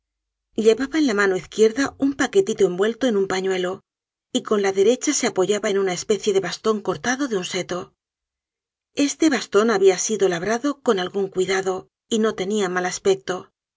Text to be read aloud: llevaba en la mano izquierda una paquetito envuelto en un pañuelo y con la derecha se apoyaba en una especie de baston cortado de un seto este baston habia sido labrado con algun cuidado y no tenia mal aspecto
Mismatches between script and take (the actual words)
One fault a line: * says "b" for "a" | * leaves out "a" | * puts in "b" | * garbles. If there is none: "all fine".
* says "un" for "una"